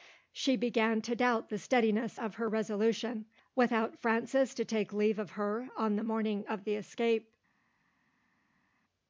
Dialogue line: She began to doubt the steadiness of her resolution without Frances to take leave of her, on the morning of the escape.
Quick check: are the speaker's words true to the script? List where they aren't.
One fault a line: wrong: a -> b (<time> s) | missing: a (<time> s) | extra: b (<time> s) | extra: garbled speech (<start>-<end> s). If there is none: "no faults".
no faults